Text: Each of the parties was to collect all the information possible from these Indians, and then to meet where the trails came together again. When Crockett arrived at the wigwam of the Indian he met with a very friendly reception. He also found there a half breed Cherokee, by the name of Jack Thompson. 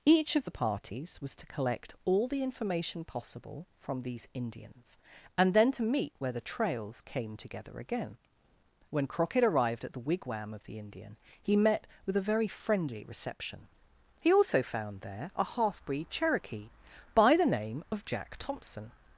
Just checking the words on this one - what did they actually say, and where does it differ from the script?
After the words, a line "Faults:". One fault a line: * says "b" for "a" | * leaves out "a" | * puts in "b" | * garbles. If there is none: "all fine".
Each of the parties was to collect all the information possible from these Indians, and then to meet where the trails came together again. When Crockett arrived at the wigwam of the Indian he met with a very friendly reception. He also found there a half breed Cherokee, by the name of Jack Thompson.
Faults:
all fine